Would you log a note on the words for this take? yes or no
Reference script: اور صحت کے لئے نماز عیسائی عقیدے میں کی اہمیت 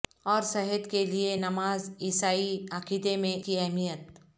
no